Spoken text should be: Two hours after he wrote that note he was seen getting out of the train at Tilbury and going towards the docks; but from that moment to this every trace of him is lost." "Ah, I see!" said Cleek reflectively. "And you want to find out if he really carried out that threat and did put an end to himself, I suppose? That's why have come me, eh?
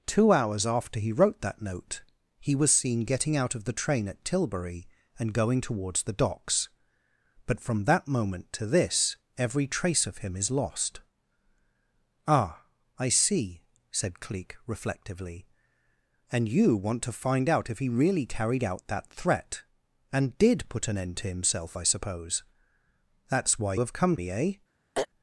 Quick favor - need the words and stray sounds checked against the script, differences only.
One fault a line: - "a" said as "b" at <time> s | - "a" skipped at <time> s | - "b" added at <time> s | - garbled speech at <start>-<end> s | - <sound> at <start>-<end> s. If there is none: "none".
- throat clearing at 24.9-25.1 s